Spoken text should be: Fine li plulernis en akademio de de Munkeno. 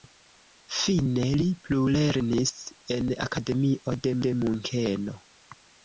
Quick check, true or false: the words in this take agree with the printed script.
true